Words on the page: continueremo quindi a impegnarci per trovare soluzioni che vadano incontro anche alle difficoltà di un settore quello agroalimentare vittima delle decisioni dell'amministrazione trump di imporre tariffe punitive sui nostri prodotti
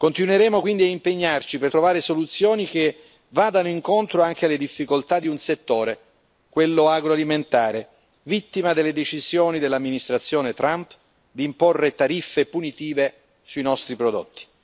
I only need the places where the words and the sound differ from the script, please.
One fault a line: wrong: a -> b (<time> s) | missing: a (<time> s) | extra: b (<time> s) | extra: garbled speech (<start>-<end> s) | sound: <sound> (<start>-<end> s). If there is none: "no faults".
no faults